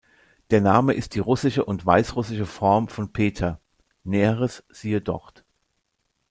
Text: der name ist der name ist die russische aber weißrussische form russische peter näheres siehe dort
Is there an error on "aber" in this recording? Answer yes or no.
yes